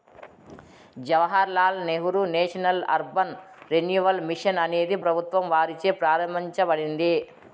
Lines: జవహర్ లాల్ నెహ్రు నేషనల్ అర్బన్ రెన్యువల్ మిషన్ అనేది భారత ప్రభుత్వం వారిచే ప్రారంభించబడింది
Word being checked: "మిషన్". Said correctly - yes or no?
yes